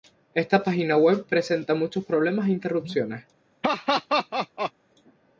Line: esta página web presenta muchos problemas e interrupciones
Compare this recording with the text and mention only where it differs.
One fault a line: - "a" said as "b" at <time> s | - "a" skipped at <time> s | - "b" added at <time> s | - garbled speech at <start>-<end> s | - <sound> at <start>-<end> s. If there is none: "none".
- laugh at 3.6-4.7 s